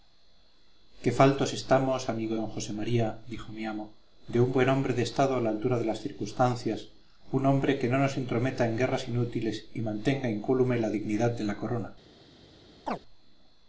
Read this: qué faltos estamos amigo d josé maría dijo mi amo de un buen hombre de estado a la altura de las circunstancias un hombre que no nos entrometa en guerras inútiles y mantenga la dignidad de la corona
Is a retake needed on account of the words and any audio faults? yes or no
yes